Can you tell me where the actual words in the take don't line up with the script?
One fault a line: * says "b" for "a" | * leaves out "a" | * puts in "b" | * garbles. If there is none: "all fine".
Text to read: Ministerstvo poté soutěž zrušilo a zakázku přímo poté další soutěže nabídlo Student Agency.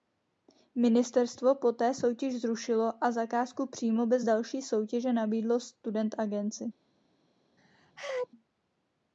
* says "bez" for "poté"